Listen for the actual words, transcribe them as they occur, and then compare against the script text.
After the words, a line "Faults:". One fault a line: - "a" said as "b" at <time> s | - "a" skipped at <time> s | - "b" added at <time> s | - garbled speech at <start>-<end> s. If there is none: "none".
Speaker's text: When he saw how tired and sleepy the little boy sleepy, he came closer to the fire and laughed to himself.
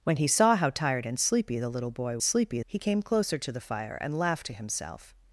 When he saw how tired and sleepy the little boy sleepy, he came closer to the fire and laughed to himself.
Faults:
none